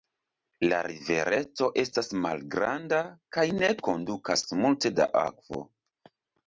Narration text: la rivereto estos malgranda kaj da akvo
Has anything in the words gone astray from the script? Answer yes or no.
yes